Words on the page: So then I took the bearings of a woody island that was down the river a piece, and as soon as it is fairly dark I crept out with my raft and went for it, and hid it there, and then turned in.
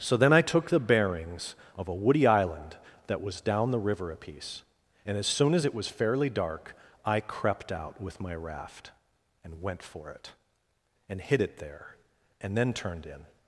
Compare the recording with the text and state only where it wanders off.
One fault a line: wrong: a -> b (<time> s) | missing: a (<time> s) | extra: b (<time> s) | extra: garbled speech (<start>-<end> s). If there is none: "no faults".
wrong: is -> was (5.7 s)